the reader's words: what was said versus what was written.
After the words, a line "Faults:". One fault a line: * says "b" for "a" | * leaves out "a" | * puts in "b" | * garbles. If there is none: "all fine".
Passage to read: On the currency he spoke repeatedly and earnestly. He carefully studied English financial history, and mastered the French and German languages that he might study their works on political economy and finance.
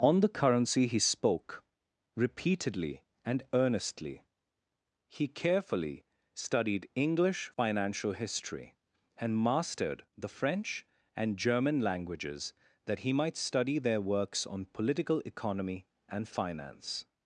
On the currency he spoke repeatedly and earnestly. He carefully studied English financial history, and mastered the French and German languages that he might study their works on political economy and finance.
Faults:
all fine